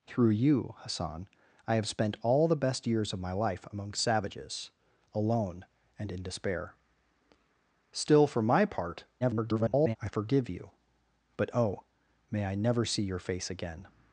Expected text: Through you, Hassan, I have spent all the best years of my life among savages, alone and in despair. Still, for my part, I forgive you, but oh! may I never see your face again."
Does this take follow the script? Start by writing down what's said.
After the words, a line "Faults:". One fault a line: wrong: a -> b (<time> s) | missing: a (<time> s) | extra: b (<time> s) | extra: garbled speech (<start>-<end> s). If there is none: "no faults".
Through you, Hassan, I have spent all the best years of my life among savages, alone and in despair. Still, for my part, [garbled] I forgive you, but oh! may I never see your face again."
Faults:
extra: garbled speech (9.2-10.0 s)